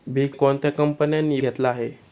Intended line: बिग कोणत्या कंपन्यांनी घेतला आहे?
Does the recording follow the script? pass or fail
pass